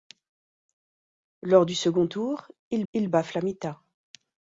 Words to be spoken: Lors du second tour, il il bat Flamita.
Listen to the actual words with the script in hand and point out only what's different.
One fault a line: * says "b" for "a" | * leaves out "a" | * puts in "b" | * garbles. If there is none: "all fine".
all fine